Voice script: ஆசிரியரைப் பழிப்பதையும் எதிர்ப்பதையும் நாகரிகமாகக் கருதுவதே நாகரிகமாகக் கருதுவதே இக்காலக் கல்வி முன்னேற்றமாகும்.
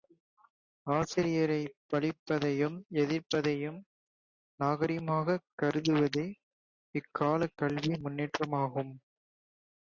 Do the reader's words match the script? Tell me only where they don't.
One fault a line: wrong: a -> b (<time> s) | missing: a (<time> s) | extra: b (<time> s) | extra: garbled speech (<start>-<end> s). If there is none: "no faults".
missing: நாகரிகமாகக் கருதுவதே (6.2 s)